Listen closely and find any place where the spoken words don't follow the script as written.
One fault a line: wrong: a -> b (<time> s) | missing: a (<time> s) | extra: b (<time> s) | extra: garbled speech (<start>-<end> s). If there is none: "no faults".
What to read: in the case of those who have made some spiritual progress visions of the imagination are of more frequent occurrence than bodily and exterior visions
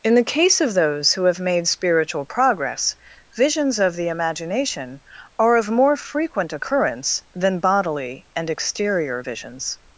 missing: some (1.7 s)